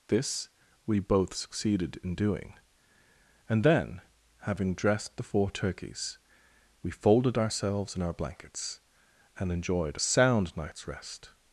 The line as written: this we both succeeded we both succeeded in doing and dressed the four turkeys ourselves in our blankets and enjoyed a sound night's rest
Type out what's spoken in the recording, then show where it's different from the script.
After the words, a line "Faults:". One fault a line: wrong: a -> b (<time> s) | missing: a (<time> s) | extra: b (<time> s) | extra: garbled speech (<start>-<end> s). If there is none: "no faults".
this we both succeeded in doing and then having dressed the four turkeys we folded ourselves in our blankets and enjoyed a sound night's rest
Faults:
missing: we both succeeded (2.0 s)
extra: then having (3.6 s)
extra: we folded (6.8 s)